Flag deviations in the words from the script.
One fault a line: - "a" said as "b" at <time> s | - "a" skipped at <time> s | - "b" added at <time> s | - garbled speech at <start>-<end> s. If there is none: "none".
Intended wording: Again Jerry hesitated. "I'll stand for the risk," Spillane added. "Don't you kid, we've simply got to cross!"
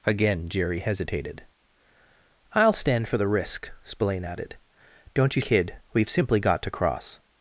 none